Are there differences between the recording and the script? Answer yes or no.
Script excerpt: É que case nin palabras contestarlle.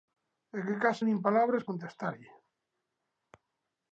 no